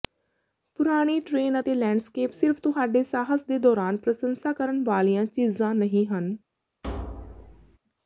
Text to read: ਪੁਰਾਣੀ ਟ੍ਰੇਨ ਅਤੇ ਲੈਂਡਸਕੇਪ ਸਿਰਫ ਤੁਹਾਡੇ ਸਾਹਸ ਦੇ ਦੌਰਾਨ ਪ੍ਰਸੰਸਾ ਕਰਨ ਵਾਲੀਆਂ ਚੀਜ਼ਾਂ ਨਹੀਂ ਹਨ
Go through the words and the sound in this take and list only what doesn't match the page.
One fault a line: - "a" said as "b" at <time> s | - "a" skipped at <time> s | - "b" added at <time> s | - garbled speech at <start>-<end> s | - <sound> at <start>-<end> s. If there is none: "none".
- thud at 6.8-7.8 s